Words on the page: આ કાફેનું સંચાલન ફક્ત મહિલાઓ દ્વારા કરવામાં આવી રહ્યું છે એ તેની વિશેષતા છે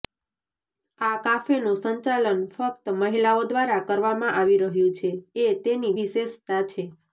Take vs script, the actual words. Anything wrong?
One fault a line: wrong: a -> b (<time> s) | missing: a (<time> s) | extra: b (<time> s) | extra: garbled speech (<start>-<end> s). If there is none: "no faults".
no faults